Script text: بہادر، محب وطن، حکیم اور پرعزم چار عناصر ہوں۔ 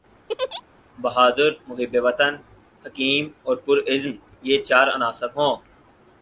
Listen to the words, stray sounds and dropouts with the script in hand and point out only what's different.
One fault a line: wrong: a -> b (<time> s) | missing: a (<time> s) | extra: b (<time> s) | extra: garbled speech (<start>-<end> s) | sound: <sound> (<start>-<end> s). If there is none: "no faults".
sound: laugh (0.3-0.6 s)
extra: یہ (4.4 s)